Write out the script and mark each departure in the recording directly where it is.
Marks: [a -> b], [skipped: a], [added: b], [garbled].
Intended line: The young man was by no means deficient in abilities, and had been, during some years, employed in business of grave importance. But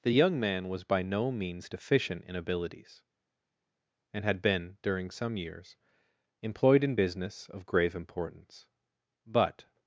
The young man was by no means deficient in abilities, and had been, during some years, employed in business of grave importance. But